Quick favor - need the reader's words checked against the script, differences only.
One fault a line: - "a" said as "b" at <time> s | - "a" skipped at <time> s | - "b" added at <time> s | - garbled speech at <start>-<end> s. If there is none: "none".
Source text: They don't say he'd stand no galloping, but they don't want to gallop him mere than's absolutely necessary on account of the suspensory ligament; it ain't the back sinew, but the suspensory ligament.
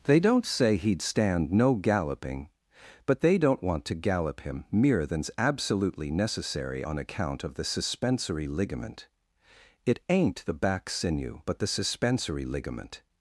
none